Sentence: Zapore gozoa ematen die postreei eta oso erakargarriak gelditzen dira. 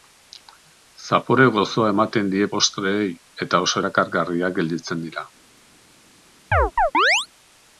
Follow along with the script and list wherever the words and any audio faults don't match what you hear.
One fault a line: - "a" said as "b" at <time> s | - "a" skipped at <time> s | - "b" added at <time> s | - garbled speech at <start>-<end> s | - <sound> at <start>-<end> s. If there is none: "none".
- chirp at 6.5-7.3 s